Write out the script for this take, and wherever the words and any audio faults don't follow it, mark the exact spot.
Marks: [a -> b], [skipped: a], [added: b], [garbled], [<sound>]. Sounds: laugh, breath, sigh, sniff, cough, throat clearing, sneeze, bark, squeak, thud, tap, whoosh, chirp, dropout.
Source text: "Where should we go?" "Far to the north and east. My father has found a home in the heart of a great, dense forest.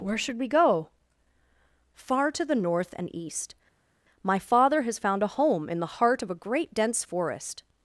"Where should we go?" "Far to the north and east. My father has found a home in the heart of a great, dense forest.